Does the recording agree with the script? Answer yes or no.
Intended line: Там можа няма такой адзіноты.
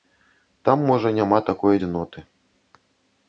yes